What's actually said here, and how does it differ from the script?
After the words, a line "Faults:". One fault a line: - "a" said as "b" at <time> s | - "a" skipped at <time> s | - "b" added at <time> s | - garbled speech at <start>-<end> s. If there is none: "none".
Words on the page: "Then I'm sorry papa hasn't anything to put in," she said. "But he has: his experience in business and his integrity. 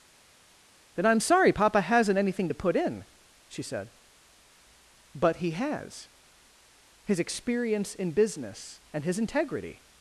"Then I'm sorry papa hasn't anything to put in," she said. "But he has: his experience in business and his integrity.
Faults:
none